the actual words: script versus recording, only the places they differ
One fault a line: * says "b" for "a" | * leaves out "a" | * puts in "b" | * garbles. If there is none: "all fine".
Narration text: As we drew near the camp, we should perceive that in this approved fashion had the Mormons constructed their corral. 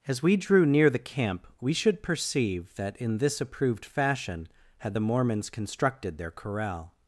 all fine